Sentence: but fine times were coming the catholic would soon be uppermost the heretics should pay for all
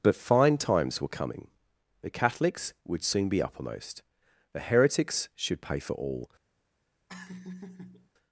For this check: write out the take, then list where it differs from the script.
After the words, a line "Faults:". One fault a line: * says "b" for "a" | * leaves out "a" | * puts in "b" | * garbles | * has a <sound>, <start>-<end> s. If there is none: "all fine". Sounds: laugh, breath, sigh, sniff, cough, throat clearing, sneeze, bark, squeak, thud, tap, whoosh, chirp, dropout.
but fine times were coming the catholics would soon be uppermost the heretics should pay for all
Faults:
* says "catholics" for "catholic"
* has a laugh, 7.1-8.1 s